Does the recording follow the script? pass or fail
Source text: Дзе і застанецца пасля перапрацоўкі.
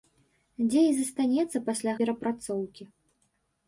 pass